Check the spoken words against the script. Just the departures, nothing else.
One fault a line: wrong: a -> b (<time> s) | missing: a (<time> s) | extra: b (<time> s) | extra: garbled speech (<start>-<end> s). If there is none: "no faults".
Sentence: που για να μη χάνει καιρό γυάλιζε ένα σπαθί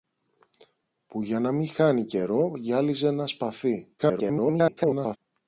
extra: garbled speech (4.0-5.2 s)